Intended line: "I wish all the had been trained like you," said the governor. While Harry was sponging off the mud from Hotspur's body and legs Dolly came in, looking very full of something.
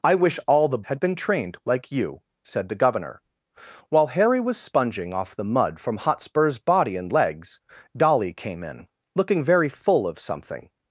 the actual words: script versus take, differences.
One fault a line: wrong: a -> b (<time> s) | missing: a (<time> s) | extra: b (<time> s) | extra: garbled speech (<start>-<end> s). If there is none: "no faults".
no faults